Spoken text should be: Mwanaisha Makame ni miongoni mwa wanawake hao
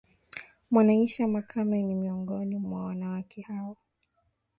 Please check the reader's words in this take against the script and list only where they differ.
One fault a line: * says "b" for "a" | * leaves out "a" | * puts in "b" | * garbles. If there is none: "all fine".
all fine